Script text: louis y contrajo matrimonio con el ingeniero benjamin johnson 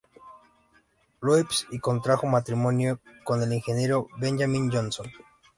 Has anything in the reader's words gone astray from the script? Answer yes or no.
no